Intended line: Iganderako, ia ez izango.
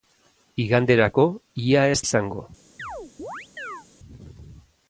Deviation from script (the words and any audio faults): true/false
true